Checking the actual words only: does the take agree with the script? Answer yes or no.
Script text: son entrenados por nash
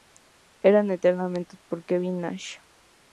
no